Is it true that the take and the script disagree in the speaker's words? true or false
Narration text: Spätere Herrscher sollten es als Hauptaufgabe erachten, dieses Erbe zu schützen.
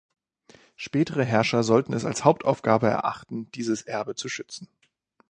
false